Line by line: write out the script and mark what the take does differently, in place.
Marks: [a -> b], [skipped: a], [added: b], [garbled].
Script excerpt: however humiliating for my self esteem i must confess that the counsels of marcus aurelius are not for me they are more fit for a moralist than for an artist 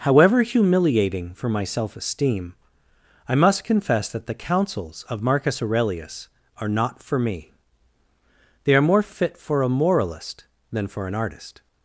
however humiliating for my self esteem i must confess that the counsels of marcus aurelius are not for me they are more fit for a moralist than for an artist